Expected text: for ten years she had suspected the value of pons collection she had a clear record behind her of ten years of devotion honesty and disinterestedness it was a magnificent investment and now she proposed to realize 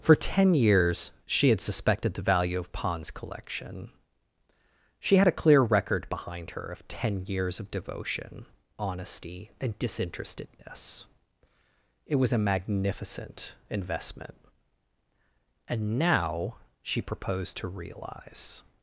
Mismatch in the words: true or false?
false